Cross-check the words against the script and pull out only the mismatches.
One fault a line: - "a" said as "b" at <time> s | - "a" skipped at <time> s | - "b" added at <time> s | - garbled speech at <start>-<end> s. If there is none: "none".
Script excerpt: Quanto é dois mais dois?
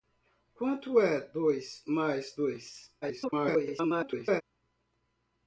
- garbled speech at 3.0-4.4 s